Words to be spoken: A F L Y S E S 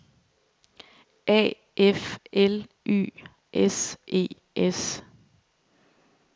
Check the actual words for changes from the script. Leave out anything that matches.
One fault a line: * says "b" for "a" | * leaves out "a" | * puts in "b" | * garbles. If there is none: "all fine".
all fine